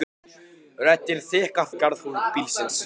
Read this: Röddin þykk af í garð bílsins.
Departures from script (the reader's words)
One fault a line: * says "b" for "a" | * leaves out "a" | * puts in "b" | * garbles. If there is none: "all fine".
all fine